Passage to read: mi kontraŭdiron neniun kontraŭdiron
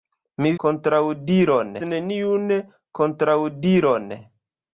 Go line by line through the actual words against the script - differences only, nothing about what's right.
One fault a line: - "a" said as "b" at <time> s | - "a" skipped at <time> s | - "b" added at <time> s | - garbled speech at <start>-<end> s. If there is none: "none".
none